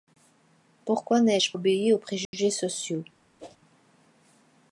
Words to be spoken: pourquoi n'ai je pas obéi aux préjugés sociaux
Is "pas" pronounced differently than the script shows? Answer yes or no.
yes